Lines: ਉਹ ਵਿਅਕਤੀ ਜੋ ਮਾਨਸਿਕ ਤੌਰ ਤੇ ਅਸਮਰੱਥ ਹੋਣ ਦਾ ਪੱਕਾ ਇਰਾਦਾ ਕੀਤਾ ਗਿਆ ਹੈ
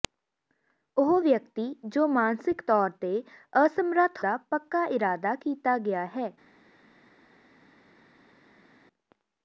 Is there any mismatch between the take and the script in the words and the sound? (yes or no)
yes